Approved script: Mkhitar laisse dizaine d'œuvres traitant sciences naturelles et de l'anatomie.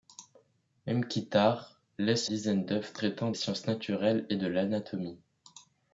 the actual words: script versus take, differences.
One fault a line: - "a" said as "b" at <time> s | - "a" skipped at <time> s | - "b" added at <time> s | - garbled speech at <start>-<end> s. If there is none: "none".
none